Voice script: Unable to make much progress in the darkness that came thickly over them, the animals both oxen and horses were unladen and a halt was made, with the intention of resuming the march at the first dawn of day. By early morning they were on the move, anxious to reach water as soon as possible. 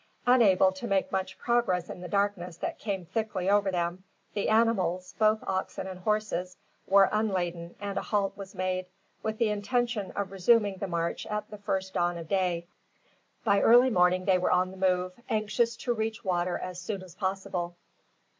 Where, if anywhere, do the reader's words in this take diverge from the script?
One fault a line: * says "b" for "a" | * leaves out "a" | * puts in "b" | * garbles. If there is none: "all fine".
all fine